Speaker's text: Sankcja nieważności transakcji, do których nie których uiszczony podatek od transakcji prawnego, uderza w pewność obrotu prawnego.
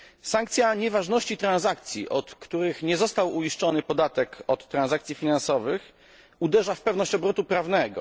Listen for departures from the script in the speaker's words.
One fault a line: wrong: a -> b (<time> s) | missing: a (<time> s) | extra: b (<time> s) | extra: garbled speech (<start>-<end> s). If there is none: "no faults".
wrong: do -> od (2.1 s)
wrong: których -> został (3.0 s)
wrong: prawnego -> finansowych (5.2 s)